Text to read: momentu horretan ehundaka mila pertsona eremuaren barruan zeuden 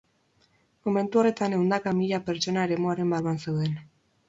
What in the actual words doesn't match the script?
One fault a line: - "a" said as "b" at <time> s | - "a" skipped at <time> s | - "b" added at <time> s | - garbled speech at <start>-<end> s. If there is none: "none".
none